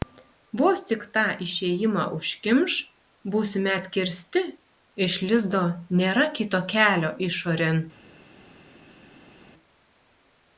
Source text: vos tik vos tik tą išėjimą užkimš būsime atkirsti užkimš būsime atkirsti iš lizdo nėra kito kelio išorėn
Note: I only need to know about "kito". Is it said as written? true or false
true